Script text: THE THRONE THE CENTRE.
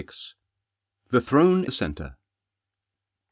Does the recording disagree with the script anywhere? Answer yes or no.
no